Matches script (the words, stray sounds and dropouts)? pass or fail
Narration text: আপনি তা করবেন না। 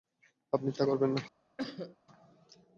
fail